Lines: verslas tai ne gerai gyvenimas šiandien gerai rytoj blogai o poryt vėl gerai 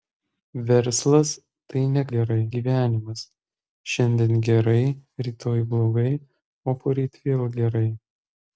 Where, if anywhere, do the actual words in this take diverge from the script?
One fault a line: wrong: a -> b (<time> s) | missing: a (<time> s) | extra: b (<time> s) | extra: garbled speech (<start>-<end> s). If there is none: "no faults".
no faults